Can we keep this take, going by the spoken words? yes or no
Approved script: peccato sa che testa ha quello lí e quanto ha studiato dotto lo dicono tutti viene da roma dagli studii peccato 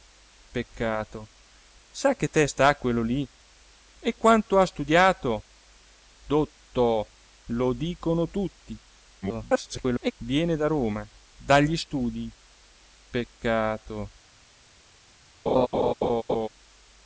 no